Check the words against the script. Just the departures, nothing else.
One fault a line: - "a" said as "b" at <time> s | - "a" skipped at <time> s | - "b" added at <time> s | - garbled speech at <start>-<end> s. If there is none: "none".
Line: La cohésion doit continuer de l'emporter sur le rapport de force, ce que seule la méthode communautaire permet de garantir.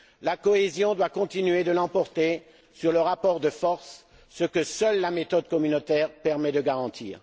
none